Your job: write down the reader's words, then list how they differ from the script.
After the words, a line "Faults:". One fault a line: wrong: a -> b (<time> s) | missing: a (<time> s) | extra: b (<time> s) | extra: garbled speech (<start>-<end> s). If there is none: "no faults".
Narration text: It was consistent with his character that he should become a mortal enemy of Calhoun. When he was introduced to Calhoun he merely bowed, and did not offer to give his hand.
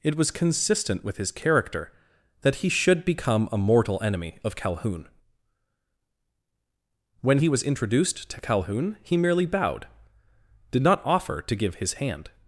It was consistent with his character that he should become a mortal enemy of Calhoun. When he was introduced to Calhoun he merely bowed, did not offer to give his hand.
Faults:
missing: and (9.9 s)